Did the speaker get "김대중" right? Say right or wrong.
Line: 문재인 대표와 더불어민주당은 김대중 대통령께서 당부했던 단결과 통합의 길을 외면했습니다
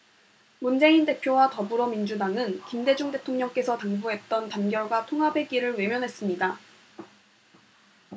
right